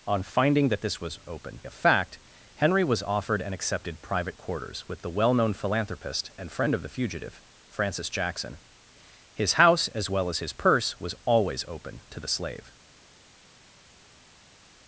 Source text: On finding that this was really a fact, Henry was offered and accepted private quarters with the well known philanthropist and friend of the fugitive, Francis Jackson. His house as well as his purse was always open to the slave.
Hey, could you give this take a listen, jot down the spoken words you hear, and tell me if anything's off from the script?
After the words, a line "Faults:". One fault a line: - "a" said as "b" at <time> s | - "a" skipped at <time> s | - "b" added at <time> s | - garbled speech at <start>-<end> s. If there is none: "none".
On finding that this was open a fact, Henry was offered and accepted private quarters with the well known philanthropist and friend of the fugitive, Francis Jackson. His house as well as his purse was always open to the slave.
Faults:
- "really" said as "open" at 1.3 s